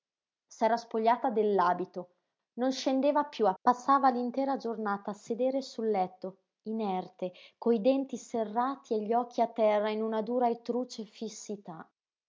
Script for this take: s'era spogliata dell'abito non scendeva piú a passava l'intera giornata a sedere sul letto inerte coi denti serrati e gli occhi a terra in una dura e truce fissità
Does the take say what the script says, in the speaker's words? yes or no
yes